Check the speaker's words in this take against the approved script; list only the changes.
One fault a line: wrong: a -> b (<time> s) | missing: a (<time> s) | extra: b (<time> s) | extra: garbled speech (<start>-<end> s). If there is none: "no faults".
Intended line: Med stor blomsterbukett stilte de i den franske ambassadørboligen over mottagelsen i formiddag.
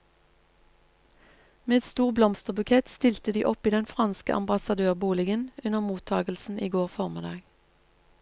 extra: opp (3.5 s)
wrong: over -> under (5.6 s)
extra: går (6.7 s)